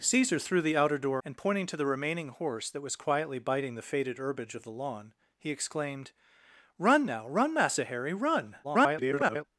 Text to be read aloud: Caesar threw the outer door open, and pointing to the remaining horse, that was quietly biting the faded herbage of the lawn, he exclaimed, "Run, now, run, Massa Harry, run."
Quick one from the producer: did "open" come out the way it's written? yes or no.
no